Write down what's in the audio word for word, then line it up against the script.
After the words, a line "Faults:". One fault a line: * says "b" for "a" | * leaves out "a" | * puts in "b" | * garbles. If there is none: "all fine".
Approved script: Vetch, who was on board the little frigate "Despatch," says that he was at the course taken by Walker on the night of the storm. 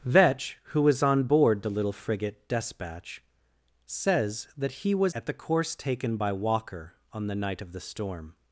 Vetch, who was on board the little frigate "Despatch," says that he was at the course taken by Walker on the night of the storm.
Faults:
all fine